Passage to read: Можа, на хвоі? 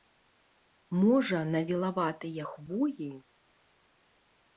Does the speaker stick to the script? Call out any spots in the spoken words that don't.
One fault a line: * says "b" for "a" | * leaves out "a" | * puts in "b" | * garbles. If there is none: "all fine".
* puts in "вілаватыя"